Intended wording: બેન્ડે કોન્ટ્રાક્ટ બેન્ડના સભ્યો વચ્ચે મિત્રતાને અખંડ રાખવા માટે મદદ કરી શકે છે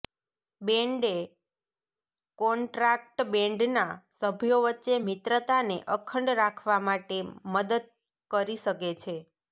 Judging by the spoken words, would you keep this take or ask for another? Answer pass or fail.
pass